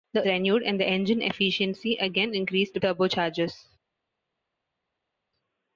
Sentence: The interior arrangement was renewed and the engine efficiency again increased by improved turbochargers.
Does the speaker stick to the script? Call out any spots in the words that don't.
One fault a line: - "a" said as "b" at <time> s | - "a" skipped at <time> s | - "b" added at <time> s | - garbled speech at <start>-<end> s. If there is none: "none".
- "interior arrangement was" skipped at 0.3 s
- "by improved" skipped at 2.8 s